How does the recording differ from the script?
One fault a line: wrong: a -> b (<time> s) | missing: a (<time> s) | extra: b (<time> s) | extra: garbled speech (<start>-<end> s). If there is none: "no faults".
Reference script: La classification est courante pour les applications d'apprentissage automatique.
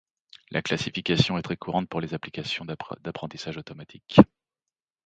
extra: très (1.4 s)